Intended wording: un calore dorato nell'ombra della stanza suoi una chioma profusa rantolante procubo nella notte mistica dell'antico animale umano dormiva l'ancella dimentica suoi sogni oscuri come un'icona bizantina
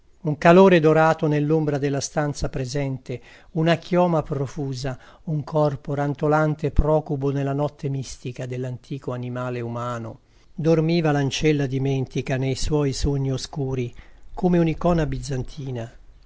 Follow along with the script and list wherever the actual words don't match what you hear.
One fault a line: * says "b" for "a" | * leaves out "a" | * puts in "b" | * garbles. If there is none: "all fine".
* says "presente" for "suoi"
* puts in "un corpo"
* puts in "nei"